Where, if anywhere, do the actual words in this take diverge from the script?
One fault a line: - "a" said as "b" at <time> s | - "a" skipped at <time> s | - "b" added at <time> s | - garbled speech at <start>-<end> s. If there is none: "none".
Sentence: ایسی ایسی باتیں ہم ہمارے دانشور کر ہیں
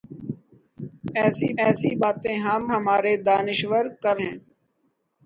none